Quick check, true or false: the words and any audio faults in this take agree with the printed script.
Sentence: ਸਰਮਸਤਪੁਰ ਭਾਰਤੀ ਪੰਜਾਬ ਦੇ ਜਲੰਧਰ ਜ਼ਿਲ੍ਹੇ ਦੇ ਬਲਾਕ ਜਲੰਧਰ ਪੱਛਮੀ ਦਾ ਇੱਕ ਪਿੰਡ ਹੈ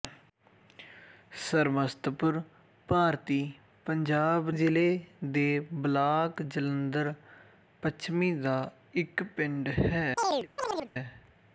false